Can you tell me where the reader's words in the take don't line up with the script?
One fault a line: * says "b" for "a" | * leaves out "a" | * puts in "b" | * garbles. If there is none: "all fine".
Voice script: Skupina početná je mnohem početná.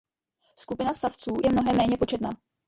* says "savců" for "početná"
* puts in "méně"